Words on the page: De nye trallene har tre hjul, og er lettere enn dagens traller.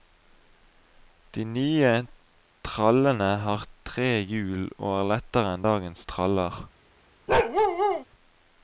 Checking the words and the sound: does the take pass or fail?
fail